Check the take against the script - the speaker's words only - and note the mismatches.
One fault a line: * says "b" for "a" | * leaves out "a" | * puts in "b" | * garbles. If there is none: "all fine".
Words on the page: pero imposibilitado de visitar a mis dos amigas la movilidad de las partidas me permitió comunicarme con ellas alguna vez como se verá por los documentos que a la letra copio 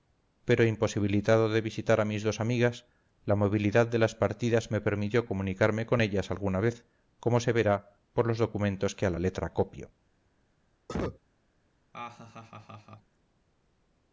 all fine